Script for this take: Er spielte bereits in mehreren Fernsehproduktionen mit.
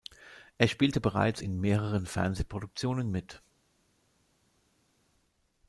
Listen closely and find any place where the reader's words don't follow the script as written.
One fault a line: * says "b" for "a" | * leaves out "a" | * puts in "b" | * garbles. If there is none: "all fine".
all fine